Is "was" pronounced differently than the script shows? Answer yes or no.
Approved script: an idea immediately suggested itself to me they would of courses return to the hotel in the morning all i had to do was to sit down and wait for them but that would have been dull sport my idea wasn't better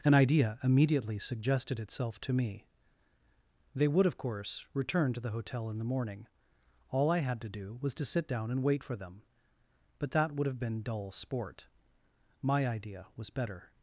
no